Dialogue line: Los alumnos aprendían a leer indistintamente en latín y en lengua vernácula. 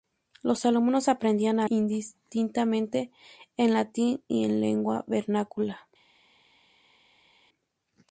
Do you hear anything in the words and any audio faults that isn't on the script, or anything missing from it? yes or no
yes